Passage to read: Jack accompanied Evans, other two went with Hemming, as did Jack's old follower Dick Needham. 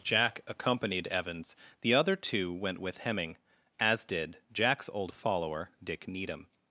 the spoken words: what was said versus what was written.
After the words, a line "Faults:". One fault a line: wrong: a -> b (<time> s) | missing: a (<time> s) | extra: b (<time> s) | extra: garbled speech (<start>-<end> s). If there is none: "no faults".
Jack accompanied Evans, the other two went with Hemming, as did Jack's old follower Dick Needham.
Faults:
extra: the (1.8 s)